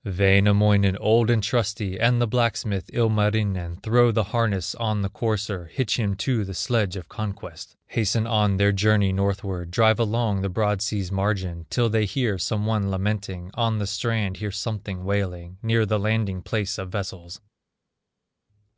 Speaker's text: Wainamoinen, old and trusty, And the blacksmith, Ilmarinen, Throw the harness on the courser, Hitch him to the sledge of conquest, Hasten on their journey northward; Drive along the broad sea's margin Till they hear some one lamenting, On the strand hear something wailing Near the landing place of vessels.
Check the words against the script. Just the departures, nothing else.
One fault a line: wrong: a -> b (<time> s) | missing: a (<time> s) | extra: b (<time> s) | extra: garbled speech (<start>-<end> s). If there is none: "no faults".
no faults